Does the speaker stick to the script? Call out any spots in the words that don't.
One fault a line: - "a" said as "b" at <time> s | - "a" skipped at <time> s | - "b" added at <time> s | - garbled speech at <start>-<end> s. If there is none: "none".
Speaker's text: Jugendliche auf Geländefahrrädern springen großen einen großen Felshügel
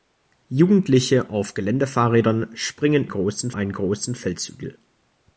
none